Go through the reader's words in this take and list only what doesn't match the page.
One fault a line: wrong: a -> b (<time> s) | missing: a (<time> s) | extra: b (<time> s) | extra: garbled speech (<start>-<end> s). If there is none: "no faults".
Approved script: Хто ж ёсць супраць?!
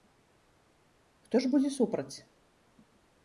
wrong: ёсць -> будзе (1.5 s)